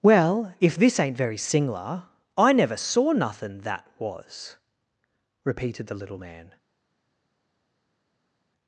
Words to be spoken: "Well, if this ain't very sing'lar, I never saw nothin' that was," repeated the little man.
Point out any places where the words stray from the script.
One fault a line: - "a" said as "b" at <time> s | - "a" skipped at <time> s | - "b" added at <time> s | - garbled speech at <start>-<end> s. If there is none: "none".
none